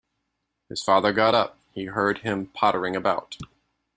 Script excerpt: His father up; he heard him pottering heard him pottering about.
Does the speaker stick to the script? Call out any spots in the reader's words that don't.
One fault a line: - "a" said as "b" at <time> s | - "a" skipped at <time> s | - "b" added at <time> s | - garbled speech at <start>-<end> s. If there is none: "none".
- "got" added at 1.1 s
- "heard him pottering" skipped at 2.9 s